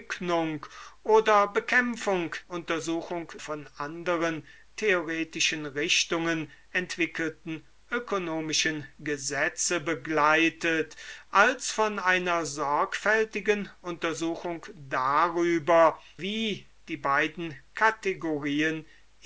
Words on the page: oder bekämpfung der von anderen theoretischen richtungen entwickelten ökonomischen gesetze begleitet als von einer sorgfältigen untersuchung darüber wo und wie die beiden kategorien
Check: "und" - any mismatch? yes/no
yes